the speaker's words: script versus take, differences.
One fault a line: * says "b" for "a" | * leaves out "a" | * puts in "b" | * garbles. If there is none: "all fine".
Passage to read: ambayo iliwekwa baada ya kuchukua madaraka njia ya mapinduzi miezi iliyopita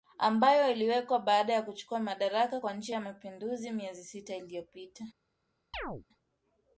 * puts in "kwa"
* puts in "sita"